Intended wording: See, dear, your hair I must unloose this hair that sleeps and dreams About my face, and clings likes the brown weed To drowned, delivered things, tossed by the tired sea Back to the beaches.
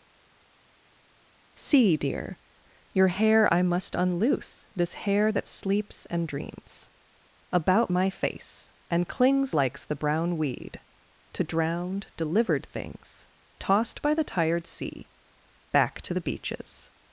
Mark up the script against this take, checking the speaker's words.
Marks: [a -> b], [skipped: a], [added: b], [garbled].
See, dear, your hair I must unloose this hair that sleeps and dreams About my face, and clings likes the brown weed To drowned, delivered things, tossed by the tired sea Back to the beaches.